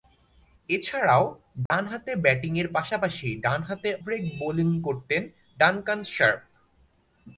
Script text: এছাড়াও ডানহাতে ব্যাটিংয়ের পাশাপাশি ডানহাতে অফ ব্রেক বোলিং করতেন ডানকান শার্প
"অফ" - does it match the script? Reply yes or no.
no